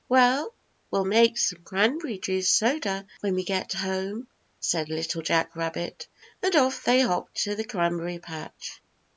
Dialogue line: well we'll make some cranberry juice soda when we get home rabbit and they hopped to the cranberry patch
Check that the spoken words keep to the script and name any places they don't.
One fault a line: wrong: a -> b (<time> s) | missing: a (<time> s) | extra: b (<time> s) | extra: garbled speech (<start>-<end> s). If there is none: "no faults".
extra: said little jack (4.6 s)
extra: off (6.5 s)